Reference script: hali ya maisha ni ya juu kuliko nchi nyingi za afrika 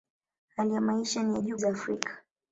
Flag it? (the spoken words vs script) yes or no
yes